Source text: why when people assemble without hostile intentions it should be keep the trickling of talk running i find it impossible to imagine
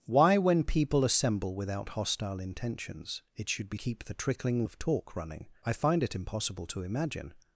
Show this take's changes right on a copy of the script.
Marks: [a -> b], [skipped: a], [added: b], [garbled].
why when people assemble without hostile intentions it should be keep the trickling of talk running i find it impossible to imagine